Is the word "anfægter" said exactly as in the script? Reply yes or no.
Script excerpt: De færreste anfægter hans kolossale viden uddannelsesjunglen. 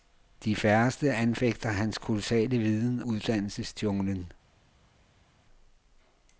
yes